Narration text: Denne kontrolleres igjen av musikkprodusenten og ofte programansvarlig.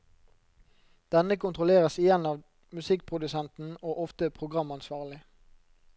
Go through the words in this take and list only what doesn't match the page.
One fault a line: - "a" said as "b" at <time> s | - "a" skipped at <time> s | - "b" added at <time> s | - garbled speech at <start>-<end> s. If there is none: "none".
none